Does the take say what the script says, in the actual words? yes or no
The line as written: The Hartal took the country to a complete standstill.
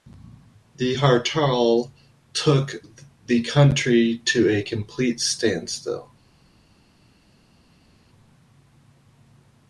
yes